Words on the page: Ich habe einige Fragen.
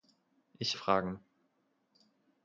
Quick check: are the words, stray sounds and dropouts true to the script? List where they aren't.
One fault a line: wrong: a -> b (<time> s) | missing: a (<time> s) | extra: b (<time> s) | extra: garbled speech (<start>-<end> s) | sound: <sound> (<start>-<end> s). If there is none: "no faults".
missing: habe einige (0.8 s)